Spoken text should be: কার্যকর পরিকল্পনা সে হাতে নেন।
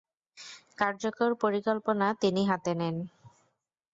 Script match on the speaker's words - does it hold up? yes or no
no